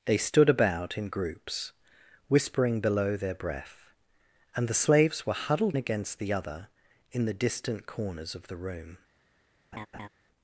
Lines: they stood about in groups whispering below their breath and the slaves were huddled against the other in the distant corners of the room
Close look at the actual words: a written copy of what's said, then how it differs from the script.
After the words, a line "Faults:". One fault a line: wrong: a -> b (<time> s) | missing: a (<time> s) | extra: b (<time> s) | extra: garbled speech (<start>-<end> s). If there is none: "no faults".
they stood about in groups whispering below their breath and the slaves were huddled against the other in the distant corners of the room
Faults:
no faults